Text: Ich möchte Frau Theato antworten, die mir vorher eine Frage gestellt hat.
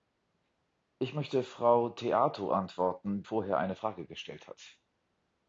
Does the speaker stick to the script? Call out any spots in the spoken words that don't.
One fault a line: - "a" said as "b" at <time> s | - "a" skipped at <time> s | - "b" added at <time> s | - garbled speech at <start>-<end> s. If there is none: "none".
- "die mir" skipped at 3.2 s